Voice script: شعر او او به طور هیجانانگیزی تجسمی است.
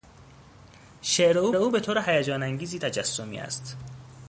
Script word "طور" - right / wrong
right